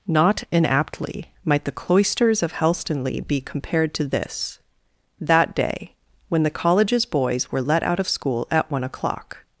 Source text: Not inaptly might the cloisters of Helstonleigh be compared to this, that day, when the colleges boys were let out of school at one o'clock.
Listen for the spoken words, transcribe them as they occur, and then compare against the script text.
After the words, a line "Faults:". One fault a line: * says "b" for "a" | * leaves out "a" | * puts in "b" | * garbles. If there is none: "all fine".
Not inaptly might the cloisters of Helstonleigh be compared to this, that day, when the colleges boys were let out of school at one o'clock.
Faults:
all fine